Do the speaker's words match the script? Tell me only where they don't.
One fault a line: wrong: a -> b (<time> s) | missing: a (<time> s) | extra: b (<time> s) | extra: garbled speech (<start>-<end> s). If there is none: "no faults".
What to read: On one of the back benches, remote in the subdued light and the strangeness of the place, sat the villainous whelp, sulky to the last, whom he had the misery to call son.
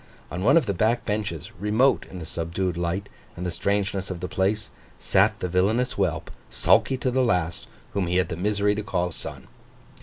no faults